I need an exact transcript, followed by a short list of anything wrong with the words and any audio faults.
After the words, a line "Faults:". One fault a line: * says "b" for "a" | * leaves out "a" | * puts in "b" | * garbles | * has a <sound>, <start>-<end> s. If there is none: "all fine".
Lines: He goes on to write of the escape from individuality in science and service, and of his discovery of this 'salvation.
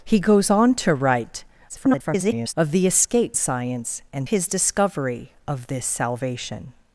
He goes on to write [garbled] of the escape science and his discovery of this 'salvation.
Faults:
* garbles
* leaves out "from individuality in"
* leaves out "service and of"